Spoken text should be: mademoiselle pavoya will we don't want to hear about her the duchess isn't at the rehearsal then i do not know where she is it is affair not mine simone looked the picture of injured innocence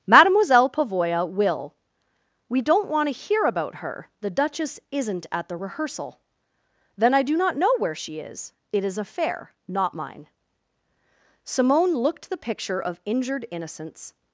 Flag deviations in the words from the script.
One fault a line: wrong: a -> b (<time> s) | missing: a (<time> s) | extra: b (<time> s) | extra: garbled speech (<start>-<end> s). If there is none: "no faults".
no faults